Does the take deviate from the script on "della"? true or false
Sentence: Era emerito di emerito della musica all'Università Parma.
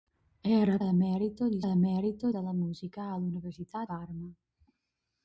false